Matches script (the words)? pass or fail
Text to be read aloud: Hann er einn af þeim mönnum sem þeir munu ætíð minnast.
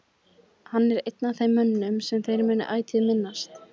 pass